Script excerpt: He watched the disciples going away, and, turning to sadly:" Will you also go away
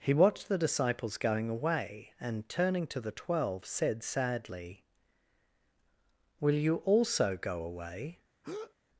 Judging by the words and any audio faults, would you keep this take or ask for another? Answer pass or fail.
fail